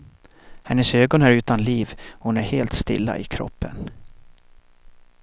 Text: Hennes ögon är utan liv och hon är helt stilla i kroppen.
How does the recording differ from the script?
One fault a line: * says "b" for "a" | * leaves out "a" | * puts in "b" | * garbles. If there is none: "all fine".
all fine